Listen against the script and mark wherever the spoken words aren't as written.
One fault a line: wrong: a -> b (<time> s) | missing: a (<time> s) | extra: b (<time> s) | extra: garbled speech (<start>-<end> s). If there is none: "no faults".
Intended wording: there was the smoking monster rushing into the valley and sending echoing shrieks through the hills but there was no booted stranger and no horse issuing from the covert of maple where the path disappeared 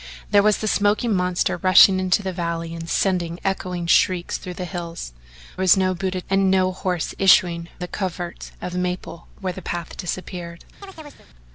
missing: but there (5.1 s)
missing: stranger (6.3 s)
missing: from (7.7 s)